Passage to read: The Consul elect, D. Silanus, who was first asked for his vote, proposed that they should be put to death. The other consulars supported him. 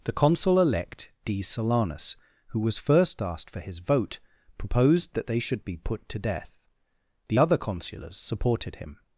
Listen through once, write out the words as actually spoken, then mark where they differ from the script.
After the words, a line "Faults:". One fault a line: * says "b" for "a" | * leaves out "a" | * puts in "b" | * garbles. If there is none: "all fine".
The Consul elect, D. Silanus, who was first asked for his vote, proposed that they should be put to death. The other consulars supported him.
Faults:
all fine